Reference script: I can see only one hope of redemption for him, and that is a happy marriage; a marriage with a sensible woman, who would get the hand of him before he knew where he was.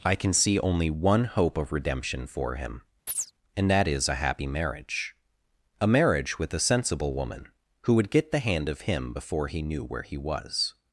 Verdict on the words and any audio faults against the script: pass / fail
fail